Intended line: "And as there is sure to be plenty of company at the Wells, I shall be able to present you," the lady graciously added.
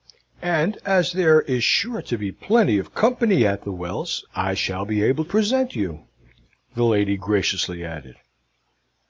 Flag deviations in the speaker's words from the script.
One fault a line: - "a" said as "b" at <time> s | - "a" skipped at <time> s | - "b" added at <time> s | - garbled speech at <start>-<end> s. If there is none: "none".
- "to" skipped at 5.2 s